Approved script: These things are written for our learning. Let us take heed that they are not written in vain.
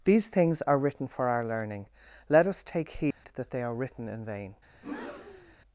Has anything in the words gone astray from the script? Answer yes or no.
yes